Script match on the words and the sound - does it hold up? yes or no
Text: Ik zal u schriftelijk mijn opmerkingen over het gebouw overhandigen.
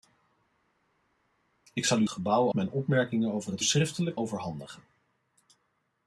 no